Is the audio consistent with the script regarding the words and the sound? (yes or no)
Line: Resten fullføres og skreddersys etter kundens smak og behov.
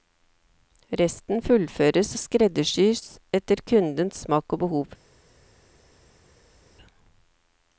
yes